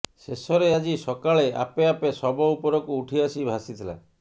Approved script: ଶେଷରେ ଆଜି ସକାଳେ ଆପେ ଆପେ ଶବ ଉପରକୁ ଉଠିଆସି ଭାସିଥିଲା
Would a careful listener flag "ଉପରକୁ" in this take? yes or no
no